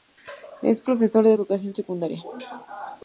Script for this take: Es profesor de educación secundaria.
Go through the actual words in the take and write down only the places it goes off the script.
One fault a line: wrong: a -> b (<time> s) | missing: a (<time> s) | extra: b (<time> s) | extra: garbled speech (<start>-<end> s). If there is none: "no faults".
no faults